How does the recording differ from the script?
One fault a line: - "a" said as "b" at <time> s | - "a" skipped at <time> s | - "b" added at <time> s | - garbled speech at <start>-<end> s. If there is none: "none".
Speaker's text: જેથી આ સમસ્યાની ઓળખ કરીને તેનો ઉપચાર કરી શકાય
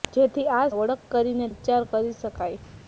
- "સમસ્યાની" skipped at 0.7 s
- "તેનો" skipped at 1.5 s